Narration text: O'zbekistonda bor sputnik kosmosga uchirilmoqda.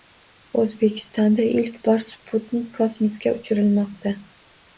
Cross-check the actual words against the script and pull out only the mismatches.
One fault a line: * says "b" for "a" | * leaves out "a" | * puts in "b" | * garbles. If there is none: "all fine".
* puts in "ilk"